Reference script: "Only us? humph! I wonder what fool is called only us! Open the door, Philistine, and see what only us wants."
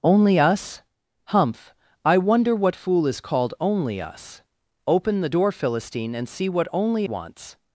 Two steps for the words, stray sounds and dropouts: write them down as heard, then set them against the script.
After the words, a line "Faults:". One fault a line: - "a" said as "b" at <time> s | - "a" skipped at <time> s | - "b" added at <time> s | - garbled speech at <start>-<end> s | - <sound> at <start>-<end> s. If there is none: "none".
"Only us? humph! I wonder what fool is called only us! Open the door, Philistine, and see what only wants."
Faults:
- "us" skipped at 7.1 s